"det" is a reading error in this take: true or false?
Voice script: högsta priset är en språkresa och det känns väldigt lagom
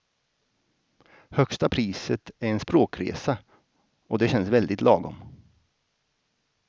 false